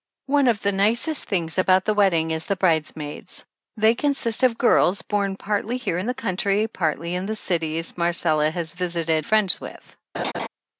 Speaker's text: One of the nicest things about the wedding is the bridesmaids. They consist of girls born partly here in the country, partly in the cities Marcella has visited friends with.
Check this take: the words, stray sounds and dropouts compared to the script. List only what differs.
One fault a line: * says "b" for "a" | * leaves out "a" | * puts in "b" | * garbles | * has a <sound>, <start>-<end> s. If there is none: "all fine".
* has a laugh, 10.1-10.5 s